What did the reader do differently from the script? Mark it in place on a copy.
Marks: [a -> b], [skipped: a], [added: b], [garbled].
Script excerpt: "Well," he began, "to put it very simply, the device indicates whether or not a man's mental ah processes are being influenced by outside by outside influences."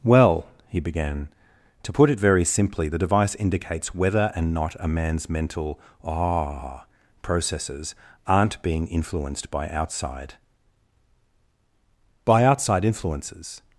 "Well," he began, "to put it very simply, the device indicates whether [or -> and] not a man's mental ah processes [are -> aren't] being influenced by outside by outside influences."